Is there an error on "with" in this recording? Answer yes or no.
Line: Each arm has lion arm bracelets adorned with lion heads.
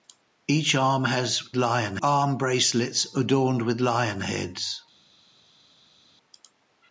no